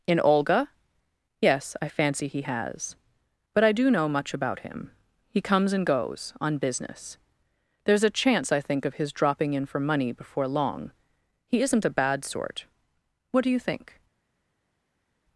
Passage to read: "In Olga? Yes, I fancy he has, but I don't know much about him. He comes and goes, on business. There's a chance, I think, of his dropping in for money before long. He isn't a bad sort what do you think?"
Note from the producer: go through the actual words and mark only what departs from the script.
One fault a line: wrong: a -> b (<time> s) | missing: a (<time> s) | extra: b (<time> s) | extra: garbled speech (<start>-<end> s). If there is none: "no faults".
wrong: don't -> do (3.7 s)